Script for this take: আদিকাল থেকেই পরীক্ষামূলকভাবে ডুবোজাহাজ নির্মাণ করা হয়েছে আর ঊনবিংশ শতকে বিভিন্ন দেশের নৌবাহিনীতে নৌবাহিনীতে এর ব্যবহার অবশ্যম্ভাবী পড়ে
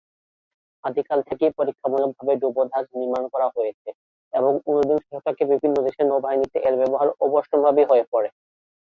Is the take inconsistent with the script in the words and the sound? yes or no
yes